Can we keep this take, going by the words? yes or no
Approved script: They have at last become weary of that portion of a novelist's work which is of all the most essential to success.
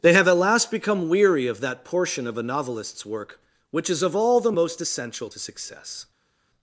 yes